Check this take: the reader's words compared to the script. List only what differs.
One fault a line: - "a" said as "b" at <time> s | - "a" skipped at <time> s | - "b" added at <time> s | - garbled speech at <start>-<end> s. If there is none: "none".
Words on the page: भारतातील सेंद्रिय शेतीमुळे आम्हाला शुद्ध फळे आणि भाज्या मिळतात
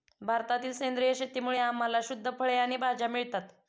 none